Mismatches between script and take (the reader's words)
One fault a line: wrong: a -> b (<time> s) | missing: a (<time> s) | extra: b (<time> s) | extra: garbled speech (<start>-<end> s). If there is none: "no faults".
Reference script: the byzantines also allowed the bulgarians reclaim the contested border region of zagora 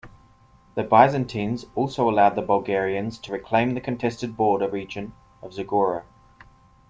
extra: to (3.2 s)